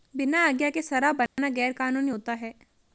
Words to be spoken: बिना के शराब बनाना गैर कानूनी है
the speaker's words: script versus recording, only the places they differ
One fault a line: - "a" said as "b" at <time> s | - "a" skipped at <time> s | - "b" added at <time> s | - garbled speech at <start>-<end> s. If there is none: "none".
- "आज्ञा" added at 0.5 s
- "होता" added at 2.1 s